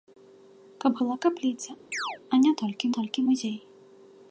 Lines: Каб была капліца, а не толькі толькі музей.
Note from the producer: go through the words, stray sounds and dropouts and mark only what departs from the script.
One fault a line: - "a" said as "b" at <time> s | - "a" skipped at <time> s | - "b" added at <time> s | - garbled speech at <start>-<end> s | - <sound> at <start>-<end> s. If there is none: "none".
- chirp at 1.9-2.2 s